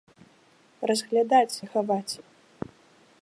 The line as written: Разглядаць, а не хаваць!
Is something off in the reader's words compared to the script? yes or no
yes